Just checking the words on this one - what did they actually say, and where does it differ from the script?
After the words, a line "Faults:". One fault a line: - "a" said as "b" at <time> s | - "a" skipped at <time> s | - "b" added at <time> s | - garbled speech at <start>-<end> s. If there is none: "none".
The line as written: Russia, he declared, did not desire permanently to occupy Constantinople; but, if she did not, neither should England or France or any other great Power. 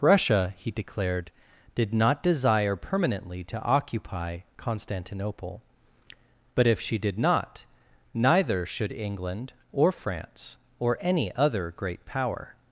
Russia, he declared, did not desire permanently to occupy Constantinople; but, if she did not, neither should England or France or any other great Power.
Faults:
none